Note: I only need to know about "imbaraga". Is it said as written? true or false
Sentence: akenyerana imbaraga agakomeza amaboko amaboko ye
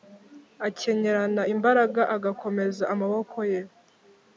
true